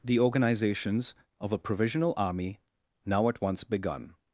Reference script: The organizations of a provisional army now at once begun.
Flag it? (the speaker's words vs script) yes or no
no